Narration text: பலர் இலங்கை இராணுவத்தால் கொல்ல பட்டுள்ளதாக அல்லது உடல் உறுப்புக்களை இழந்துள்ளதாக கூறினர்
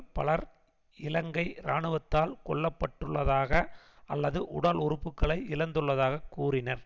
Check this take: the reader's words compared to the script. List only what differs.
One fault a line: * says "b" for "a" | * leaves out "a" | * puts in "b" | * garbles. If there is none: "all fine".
all fine